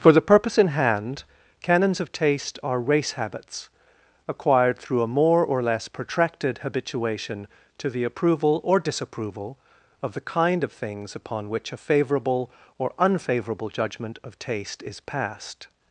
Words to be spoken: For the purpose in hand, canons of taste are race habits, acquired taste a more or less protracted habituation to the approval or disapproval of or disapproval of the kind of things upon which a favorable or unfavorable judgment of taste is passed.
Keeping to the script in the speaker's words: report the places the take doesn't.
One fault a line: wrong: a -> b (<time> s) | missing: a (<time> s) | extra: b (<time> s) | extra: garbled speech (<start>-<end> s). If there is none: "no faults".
wrong: taste -> through (4.8 s)
missing: or disapproval of (10.1 s)